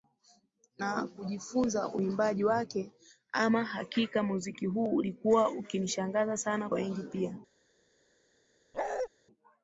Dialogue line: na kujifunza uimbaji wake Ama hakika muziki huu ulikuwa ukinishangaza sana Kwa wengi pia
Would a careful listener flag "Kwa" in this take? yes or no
yes